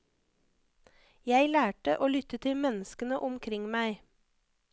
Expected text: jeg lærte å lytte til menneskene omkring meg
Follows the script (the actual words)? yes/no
yes